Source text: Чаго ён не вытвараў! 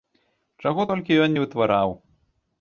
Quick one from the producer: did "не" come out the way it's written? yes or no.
yes